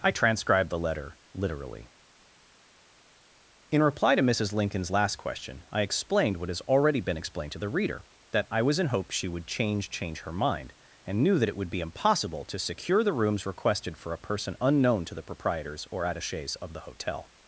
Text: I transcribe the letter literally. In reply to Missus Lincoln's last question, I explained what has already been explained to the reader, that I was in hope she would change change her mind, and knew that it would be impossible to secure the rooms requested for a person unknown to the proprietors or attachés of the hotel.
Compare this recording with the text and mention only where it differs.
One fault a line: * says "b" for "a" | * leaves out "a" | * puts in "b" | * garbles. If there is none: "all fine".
all fine